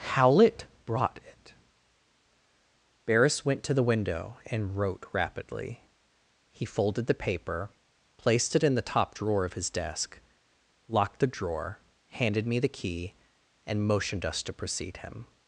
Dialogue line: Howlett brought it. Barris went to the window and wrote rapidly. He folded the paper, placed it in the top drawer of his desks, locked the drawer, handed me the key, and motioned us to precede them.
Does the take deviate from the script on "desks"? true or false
true